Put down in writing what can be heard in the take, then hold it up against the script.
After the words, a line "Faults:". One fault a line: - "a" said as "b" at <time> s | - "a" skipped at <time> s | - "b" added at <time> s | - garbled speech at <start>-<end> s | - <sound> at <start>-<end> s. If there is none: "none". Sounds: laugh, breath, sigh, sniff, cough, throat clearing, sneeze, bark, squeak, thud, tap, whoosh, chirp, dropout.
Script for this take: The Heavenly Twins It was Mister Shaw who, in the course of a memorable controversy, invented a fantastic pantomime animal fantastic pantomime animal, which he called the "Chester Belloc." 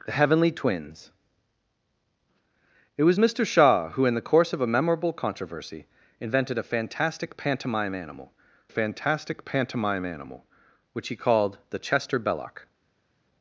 The Heavenly Twins It was Mister Shaw who, in the course of a memorable controversy, invented a fantastic pantomime animal fantastic pantomime animal, which he called the "Chester Belloc."
Faults:
none